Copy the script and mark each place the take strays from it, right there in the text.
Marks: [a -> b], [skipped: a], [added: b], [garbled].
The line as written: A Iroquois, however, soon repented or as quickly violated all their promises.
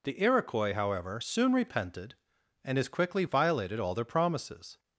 [A -> The] Iroquois, however, soon repented [or -> and] as quickly violated all their promises.